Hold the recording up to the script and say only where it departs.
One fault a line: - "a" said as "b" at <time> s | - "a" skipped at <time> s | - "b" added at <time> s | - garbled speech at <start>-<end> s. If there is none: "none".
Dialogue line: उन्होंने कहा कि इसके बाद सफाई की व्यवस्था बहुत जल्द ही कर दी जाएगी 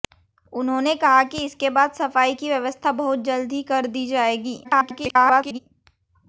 - garbled speech at 4.6-5.6 s